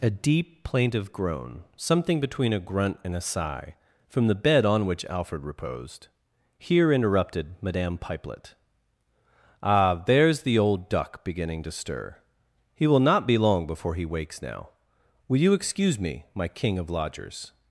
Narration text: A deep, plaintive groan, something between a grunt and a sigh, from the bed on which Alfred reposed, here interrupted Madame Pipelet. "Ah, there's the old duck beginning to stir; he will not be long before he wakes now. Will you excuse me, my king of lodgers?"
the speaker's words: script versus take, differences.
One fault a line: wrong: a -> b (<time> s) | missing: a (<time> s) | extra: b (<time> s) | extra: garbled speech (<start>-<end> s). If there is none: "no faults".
no faults